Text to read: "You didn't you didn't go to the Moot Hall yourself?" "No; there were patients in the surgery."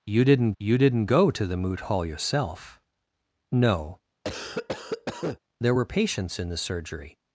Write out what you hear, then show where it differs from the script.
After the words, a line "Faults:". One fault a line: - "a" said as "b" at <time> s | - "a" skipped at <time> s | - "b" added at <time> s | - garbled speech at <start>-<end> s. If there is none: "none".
"You didn't you didn't go to the Moot Hall yourself?" "No; there were patients in the surgery."
Faults:
none